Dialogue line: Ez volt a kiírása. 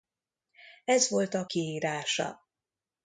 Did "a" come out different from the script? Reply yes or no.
no